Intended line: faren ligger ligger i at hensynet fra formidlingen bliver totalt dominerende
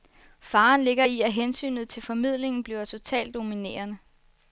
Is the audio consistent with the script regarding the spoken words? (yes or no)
no